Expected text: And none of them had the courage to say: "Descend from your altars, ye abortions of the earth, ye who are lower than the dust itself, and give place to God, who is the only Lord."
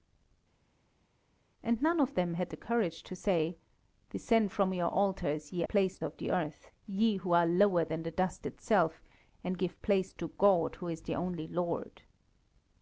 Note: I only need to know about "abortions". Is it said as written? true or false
false